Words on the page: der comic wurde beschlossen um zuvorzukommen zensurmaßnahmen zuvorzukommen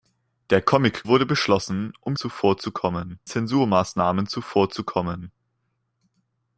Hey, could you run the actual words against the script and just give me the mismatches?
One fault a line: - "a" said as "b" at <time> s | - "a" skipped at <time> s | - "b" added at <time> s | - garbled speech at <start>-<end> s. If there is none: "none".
none